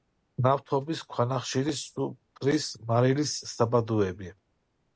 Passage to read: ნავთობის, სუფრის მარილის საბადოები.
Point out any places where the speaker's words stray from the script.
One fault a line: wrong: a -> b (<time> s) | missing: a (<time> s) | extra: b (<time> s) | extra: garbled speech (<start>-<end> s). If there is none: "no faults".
extra: ქვანახშირის (1.1 s)